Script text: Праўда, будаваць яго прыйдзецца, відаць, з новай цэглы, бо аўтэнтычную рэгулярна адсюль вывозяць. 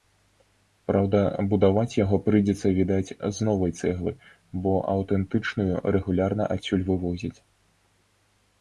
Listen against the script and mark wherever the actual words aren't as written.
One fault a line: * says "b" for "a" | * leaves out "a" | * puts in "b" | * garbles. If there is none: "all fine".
all fine